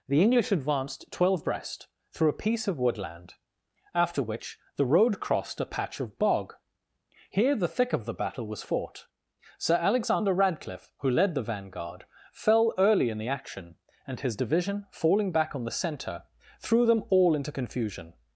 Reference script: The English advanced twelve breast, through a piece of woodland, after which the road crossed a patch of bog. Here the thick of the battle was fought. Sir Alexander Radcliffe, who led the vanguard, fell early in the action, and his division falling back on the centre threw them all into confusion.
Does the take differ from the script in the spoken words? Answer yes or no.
no